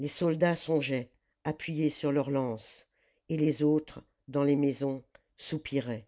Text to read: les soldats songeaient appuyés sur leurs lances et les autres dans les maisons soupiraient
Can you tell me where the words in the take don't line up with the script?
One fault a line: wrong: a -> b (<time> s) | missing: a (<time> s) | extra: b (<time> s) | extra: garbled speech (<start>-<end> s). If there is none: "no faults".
no faults